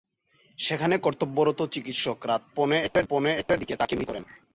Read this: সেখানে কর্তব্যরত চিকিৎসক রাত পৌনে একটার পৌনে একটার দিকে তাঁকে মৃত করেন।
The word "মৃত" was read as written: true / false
true